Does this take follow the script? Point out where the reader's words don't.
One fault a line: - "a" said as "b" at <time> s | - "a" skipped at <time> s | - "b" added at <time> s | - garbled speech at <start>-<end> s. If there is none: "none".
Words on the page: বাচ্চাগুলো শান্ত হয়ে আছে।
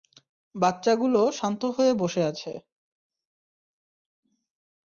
- "বসে" added at 1.9 s